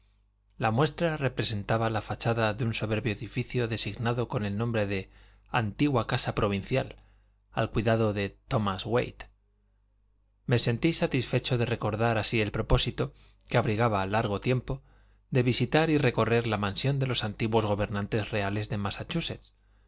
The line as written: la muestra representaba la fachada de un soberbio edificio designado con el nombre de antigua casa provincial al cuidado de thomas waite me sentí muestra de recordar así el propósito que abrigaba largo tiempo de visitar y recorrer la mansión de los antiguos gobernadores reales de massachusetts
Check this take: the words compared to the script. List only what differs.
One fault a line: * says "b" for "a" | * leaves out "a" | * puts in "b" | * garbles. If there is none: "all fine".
* says "satisfecho" for "muestra"